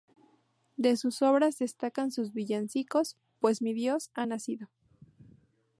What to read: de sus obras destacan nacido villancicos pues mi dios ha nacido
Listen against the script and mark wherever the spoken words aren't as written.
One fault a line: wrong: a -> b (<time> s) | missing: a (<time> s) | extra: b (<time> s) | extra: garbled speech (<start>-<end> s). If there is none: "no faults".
wrong: nacido -> sus (2.1 s)